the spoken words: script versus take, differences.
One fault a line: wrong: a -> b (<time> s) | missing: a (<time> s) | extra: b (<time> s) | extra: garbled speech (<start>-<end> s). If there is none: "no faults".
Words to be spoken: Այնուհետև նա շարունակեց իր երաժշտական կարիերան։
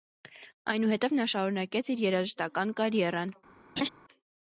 no faults